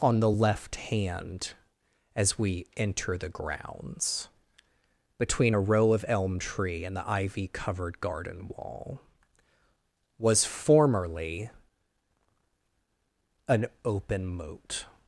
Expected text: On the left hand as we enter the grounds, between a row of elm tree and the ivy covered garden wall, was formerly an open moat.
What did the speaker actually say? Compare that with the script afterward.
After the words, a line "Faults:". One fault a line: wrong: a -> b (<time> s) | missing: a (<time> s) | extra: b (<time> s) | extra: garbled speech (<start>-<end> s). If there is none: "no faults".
On the left hand as we enter the grounds, between a row of elm tree and the ivy covered garden wall, was formerly an open moat.
Faults:
no faults